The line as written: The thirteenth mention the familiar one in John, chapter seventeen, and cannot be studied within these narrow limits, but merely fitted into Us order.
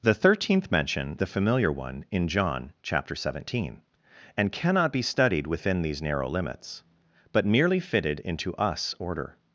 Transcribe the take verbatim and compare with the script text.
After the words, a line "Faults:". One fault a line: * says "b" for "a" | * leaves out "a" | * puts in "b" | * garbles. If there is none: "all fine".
The thirteenth mention the familiar one in John, chapter seventeen, and cannot be studied within these narrow limits, but merely fitted into Us order.
Faults:
all fine